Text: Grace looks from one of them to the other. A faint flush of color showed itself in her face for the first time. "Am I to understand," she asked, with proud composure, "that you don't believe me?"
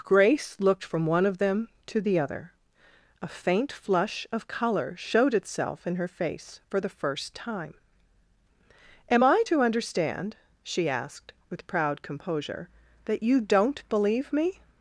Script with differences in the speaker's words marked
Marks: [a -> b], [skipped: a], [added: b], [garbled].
Grace [looks -> looked] from one of them to the other. A faint flush of color showed itself in her face for the first time. "Am I to understand," she asked, with proud composure, "that you don't believe me?"